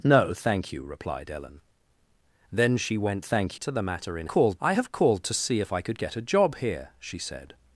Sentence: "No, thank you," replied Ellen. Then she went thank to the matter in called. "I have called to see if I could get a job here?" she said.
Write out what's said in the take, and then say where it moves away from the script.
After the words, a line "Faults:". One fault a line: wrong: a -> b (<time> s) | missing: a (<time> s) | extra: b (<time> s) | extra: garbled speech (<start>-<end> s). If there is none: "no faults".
"No, thank you," replied Ellen. Then she went thank to the matter in called. "I have called to see if I could get a job here?" she said.
Faults:
no faults